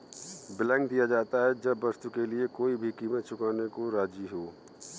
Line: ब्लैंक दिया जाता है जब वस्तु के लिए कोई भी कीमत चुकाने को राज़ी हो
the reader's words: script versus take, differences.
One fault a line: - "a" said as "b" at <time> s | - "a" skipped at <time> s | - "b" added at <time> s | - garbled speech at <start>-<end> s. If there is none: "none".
none